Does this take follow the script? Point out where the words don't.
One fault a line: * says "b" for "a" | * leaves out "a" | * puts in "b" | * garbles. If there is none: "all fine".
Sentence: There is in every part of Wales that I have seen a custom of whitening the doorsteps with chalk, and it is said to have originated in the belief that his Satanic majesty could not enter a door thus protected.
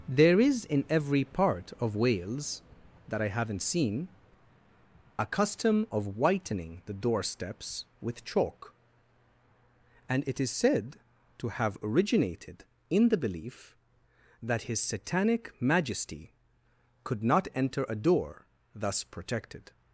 * says "haven't" for "have"